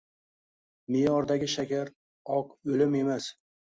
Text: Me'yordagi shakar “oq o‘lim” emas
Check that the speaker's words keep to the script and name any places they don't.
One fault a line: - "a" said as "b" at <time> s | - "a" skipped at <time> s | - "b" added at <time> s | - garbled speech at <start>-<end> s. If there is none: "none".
none